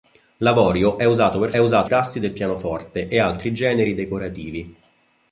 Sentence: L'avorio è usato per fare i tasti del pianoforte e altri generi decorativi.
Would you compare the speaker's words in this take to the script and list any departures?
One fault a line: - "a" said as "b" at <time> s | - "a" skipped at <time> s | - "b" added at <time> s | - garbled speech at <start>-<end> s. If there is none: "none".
- "fare" said as "usato" at 1.6 s